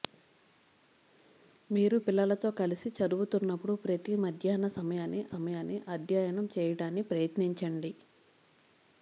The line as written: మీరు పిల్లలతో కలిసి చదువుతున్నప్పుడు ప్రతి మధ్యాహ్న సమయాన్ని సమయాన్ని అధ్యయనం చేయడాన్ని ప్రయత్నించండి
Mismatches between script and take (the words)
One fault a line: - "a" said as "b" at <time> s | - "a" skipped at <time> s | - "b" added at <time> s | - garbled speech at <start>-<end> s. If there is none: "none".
none